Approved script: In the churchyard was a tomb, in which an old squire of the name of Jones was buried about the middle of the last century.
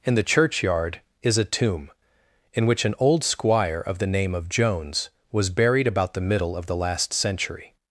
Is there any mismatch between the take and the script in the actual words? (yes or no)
yes